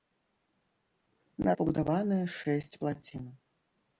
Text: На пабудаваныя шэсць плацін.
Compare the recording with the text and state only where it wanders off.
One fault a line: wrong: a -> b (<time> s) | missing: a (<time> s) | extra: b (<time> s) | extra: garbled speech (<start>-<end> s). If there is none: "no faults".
no faults